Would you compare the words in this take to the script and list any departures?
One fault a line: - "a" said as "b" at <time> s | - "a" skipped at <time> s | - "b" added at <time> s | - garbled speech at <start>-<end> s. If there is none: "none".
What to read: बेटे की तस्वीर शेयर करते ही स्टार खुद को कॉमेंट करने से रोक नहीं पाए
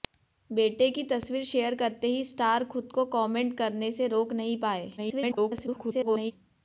- garbled speech at 5.0-6.3 s